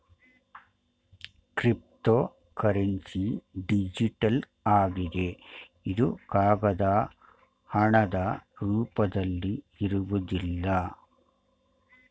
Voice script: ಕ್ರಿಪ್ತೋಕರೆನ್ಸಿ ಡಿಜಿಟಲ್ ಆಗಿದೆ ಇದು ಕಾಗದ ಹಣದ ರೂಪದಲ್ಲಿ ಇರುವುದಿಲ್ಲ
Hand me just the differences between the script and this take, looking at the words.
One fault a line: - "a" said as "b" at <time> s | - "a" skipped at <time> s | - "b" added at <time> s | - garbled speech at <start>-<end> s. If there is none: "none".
none